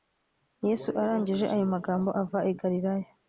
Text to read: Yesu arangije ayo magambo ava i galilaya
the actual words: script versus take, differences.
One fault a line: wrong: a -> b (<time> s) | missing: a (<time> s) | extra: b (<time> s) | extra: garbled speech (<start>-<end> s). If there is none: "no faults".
no faults